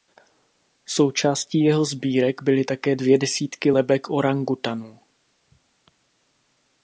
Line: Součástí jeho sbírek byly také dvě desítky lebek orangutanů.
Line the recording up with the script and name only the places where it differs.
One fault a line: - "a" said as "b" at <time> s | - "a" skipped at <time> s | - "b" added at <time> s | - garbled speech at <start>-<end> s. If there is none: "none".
none